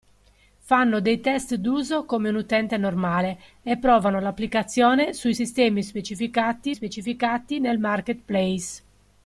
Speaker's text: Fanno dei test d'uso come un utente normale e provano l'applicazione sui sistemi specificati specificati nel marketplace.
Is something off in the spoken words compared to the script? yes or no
no